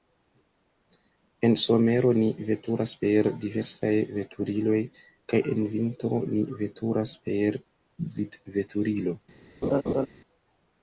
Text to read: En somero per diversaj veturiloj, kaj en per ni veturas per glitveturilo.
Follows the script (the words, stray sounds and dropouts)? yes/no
no